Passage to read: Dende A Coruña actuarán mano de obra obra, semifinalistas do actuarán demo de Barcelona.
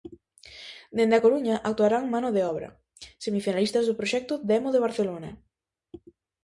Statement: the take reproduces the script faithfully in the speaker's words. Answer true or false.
false